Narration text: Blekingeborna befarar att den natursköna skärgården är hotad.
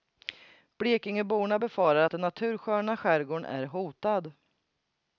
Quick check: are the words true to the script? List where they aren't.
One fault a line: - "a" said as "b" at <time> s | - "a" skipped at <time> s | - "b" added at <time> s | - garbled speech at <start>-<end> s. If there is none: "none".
none